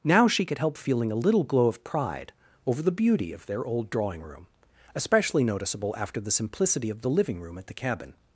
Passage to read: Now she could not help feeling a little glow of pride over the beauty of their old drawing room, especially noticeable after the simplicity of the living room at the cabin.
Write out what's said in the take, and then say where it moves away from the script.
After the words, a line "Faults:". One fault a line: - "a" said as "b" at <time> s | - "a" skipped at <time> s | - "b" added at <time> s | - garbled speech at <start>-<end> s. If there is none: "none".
Now she could help feeling a little glow of pride over the beauty of their old drawing room, especially noticeable after the simplicity of the living room at the cabin.
Faults:
- "not" skipped at 0.6 s